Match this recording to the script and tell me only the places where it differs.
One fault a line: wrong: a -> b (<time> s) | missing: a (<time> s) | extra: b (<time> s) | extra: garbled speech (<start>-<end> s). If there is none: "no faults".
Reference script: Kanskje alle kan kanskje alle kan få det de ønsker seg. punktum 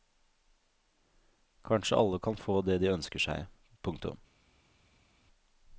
missing: kanskje alle kan (2.4 s)